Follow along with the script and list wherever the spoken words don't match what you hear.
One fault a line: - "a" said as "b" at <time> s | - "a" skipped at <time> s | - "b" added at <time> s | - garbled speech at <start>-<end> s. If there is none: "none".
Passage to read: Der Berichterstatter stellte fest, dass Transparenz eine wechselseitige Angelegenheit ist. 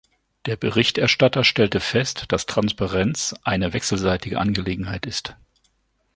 none